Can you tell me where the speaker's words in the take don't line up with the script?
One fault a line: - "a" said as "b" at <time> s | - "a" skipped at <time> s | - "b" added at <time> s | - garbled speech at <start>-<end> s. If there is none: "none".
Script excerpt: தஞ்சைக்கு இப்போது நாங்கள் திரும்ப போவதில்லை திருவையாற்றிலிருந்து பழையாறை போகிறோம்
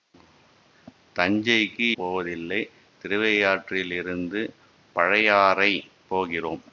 - "இப்போது நாங்கள் திரும்ப" skipped at 1.9 s